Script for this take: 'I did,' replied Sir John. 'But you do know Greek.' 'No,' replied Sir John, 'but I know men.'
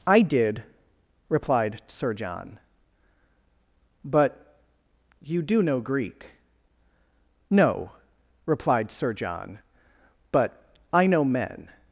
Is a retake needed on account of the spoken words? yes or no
no